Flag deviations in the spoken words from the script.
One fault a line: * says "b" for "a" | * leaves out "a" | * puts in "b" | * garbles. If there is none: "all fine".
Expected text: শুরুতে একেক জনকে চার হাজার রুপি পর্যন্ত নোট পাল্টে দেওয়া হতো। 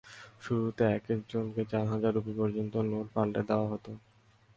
all fine